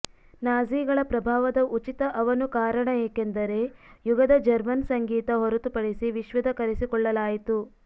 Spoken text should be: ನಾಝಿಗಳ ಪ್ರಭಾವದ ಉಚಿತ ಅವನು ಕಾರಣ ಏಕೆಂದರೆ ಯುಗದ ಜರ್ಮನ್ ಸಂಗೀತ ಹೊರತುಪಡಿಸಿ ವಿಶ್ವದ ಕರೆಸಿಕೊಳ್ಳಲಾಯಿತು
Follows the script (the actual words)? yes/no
yes